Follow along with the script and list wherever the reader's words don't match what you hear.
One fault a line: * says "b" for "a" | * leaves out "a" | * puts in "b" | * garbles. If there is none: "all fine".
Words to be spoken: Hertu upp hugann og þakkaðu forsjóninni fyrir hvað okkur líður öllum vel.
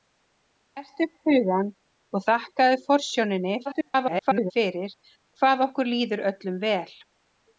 * garbles